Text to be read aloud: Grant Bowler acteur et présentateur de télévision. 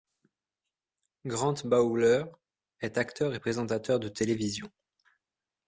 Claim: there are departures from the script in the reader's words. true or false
true